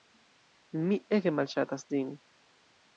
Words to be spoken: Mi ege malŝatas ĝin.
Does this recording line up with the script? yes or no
yes